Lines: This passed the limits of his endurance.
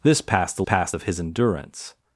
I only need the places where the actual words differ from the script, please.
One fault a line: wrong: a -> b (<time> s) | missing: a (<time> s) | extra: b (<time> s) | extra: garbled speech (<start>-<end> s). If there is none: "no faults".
wrong: limits -> passed (0.6 s)